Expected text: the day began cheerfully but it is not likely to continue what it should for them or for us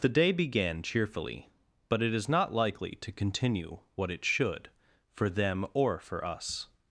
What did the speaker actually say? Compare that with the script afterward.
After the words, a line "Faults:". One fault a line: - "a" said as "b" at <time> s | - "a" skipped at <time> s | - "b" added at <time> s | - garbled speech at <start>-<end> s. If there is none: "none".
the day began cheerfully but it is not likely to continue what it should for them or for us
Faults:
none